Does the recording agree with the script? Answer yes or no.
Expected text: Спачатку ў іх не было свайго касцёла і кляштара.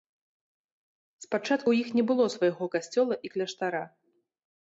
yes